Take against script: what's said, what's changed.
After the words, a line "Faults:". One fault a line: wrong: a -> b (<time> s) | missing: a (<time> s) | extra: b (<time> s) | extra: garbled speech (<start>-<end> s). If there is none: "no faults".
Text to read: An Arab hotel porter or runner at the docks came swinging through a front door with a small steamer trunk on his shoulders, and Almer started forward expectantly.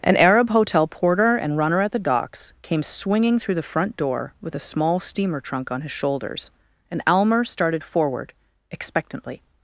An Arab hotel porter and runner at the docks came swinging through the front door with a small steamer trunk on his shoulders, and Almer started forward expectantly.
Faults:
wrong: or -> and (1.4 s)
wrong: a -> the (3.6 s)